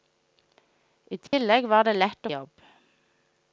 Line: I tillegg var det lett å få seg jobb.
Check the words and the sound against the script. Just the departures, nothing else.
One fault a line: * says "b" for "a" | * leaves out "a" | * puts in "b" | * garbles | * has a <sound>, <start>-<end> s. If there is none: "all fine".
* has a dropout, 1.3-1.3 s
* leaves out "få seg"